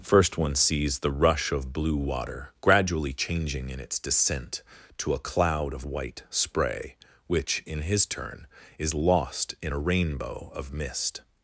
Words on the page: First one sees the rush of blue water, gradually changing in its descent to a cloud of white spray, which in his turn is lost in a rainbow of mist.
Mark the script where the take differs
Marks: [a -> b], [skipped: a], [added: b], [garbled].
First one sees the rush of blue water, gradually changing in its descent to a cloud of white spray, which in his turn is lost in a rainbow of mist.